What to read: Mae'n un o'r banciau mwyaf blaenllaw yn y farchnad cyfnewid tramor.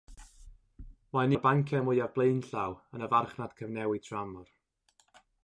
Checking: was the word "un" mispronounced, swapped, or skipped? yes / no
yes